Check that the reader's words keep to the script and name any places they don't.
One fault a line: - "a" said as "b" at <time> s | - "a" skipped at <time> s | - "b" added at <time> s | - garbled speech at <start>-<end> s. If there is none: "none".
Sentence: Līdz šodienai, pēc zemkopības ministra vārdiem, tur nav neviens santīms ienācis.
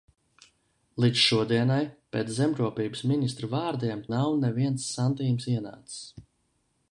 - "tur" skipped at 4.0 s